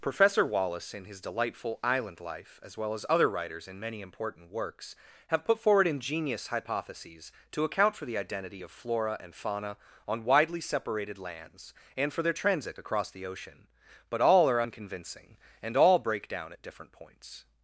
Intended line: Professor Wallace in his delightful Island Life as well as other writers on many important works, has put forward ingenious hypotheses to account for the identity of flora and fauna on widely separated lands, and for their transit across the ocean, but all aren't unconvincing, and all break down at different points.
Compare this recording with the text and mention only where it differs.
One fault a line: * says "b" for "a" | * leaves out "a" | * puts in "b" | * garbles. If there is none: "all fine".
* says "in" for "on"
* says "have" for "has"
* says "are" for "aren't"